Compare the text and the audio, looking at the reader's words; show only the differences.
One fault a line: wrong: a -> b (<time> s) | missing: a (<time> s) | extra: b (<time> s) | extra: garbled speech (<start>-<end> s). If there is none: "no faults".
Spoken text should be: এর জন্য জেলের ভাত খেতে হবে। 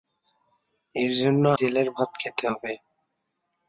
no faults